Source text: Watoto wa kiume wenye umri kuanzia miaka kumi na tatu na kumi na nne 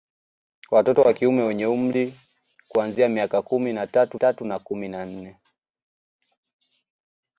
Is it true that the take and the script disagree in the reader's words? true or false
true